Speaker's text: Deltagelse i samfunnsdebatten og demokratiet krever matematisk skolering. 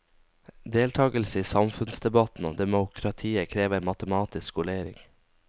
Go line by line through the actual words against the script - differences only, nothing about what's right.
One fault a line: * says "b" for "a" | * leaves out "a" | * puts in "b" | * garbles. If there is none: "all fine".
all fine